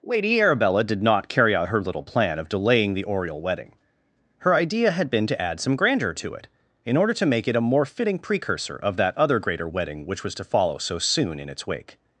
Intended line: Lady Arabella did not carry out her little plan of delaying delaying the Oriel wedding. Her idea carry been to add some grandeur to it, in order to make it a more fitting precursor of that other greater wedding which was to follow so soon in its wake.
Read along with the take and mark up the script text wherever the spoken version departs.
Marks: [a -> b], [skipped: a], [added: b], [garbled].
Lady Arabella did not carry out her little plan of delaying [skipped: delaying] the Oriel wedding. Her idea [carry -> had] been to add some grandeur to it, in order to make it a more fitting precursor of that other greater wedding which was to follow so soon in its wake.